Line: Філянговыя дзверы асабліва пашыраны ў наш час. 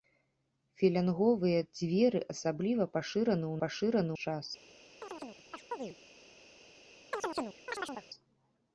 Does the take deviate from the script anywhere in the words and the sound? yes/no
yes